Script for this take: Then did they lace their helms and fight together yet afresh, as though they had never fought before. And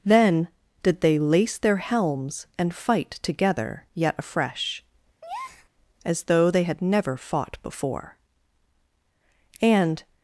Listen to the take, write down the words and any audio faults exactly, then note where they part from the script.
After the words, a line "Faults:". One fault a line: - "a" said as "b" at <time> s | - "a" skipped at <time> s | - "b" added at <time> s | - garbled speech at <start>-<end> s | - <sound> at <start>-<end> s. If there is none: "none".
Then did they lace their helms and fight together yet afresh, as though they had never fought before. And
Faults:
- breath at 5.2-5.7 s